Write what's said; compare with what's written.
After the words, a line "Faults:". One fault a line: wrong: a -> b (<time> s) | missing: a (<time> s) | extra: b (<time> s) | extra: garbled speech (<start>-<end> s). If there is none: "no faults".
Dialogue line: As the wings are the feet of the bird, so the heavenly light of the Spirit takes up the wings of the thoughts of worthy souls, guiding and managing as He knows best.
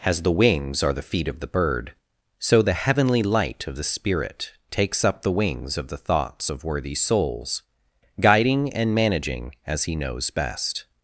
As the wings are the feet of the bird, so the heavenly light of the Spirit takes up the wings of the thoughts of worthy souls, guiding and managing as He knows best.
Faults:
no faults